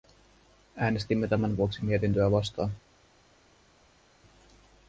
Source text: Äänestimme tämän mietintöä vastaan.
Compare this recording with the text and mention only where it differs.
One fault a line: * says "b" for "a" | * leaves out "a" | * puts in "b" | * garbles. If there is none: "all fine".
* puts in "vuoksi"